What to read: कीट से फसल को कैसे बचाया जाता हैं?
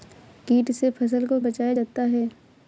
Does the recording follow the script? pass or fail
fail